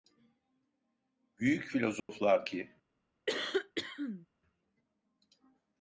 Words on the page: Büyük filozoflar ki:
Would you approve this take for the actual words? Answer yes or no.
yes